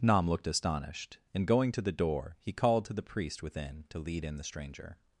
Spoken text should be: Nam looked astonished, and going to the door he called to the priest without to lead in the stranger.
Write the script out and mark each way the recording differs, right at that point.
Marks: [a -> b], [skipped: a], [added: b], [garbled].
Nam looked astonished, and going to the door he called to the priest [without -> within] to lead in the stranger.